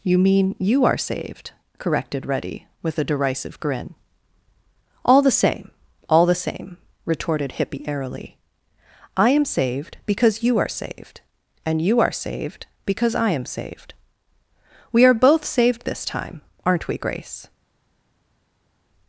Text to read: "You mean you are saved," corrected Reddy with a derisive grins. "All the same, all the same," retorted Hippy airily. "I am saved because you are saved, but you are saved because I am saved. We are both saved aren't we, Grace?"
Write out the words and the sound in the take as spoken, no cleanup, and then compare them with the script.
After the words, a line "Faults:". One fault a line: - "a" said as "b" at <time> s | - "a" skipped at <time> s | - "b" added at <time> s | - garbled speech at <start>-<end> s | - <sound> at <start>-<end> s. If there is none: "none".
"You mean you are saved," corrected Reddy with a derisive grin. "All the same, all the same," retorted Hippy airily. "I am saved because you are saved, and you are saved because I am saved. We are both saved this time, aren't we, Grace?"
Faults:
- "grins" said as "grin" at 3.6 s
- "but" said as "and" at 11.6 s
- "this time" added at 15.8 s